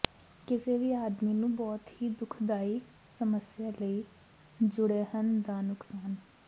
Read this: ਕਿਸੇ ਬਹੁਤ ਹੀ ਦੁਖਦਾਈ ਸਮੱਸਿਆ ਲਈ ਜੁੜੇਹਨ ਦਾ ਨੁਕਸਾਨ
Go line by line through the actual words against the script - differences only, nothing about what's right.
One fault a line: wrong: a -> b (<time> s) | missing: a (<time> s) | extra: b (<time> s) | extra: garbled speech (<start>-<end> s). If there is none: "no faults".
extra: ਵੀ ਆਦਮੀ ਨੂੰ (0.8 s)